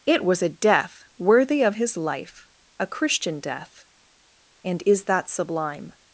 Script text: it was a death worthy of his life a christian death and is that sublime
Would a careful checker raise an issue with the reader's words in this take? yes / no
no